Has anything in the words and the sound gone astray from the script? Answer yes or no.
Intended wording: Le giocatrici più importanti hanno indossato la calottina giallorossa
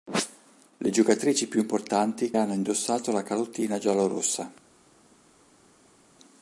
no